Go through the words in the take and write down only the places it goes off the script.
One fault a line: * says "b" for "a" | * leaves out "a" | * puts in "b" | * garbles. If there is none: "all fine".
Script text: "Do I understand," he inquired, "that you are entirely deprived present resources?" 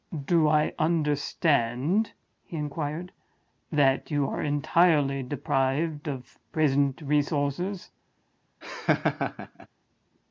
* puts in "of"